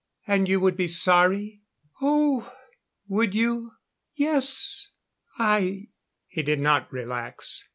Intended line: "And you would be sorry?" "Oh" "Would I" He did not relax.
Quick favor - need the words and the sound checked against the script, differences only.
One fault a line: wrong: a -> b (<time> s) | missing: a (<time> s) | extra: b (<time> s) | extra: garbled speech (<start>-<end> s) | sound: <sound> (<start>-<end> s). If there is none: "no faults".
extra: you Yes (3.4 s)